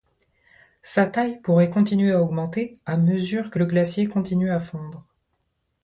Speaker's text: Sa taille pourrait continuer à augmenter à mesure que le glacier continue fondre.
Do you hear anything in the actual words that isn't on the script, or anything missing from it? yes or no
yes